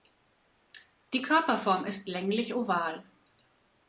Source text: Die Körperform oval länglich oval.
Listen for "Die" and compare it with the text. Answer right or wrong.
right